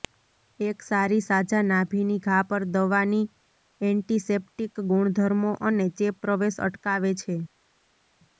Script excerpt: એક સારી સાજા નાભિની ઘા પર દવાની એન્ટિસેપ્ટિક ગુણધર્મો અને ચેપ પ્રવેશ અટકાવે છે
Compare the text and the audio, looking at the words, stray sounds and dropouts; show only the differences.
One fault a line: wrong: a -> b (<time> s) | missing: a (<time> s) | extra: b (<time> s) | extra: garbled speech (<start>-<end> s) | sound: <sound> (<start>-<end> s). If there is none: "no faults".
no faults